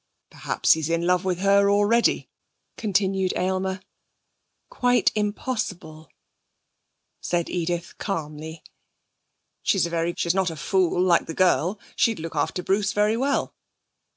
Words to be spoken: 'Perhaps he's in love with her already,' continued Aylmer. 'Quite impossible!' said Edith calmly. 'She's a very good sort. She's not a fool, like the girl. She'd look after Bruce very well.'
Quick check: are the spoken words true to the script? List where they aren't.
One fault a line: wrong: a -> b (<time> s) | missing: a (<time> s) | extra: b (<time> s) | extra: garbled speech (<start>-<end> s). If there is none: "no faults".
missing: good sort (10.1 s)